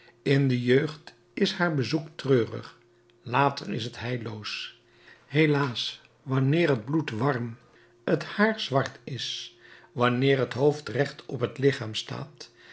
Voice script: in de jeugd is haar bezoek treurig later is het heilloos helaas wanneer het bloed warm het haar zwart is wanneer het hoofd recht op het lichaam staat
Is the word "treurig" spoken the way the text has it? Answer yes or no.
yes